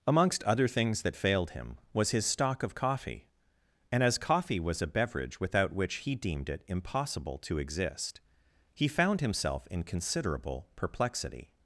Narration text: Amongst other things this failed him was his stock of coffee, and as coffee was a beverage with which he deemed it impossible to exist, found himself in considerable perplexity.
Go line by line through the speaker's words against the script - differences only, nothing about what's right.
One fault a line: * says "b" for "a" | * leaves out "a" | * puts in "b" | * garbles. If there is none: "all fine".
* says "that" for "this"
* says "without" for "with"
* puts in "he"